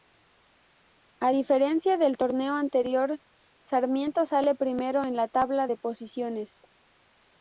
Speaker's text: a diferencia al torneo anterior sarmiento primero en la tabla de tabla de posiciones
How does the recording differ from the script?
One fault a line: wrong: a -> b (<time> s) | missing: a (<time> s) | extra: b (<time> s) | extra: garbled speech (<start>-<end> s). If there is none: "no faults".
wrong: al -> del (2.0 s)
extra: sale (4.2 s)
missing: tabla de (5.8 s)